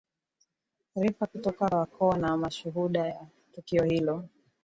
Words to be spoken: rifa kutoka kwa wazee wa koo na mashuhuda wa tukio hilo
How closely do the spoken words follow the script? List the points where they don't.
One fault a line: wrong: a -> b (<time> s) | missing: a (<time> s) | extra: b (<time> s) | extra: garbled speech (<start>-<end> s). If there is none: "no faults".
missing: kwa wazee (1.7 s)